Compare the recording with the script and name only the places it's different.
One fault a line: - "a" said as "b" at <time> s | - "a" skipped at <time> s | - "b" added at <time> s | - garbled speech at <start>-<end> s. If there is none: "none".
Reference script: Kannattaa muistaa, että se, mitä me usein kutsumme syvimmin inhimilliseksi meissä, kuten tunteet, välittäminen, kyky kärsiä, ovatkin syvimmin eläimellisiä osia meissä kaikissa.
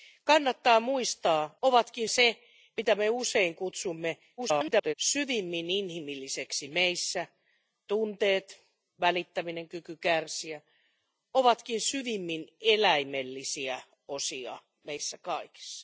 - "että" said as "ovatkin" at 1.6 s
- garbled speech at 4.4-4.9 s
- "kuten" skipped at 7.3 s